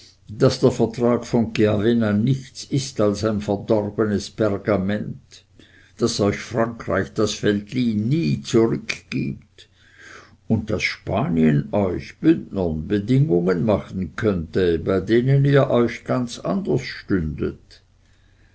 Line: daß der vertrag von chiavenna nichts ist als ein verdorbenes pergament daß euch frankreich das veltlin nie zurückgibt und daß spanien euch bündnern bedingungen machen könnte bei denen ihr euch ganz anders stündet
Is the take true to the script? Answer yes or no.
yes